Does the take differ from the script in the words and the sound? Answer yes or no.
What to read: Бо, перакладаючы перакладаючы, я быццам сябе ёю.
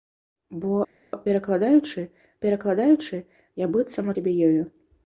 no